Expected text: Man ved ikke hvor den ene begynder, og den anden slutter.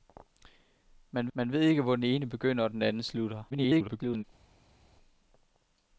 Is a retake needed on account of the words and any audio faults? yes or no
yes